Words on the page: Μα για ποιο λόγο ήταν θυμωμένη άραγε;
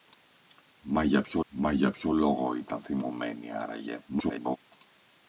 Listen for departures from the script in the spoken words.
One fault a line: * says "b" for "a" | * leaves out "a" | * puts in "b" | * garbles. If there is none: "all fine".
* puts in "μα για ποιο"
* garbles